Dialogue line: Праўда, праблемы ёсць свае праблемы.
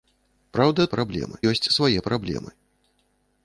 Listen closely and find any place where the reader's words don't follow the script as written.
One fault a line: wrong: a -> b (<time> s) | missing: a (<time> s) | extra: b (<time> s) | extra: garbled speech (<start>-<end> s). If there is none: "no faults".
no faults